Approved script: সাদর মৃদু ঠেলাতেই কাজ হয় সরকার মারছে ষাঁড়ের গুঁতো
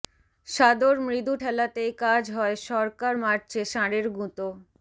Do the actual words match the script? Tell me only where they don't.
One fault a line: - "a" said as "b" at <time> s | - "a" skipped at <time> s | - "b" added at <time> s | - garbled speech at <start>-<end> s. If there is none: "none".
none